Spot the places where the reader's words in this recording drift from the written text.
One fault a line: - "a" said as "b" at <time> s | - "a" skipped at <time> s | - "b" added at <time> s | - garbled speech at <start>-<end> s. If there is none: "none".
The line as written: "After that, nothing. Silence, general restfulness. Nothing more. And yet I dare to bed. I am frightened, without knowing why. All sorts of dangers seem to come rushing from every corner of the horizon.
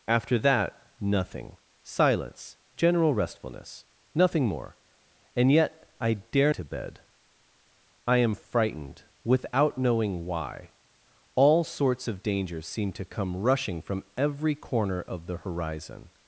none